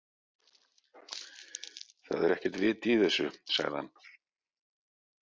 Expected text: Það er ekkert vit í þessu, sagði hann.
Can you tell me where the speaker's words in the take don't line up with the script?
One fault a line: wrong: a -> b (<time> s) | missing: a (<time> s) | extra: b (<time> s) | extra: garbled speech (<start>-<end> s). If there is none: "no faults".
no faults